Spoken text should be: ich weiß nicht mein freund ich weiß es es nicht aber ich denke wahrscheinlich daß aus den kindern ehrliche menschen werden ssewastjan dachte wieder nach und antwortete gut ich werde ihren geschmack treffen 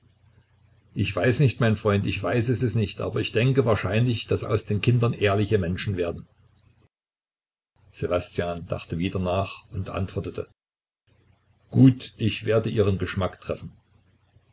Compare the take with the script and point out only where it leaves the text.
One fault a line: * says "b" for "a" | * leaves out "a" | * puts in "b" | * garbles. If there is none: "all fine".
all fine